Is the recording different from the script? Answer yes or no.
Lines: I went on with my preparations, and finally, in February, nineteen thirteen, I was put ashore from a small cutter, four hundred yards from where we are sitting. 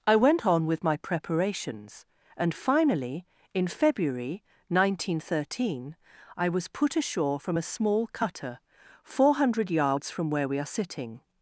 no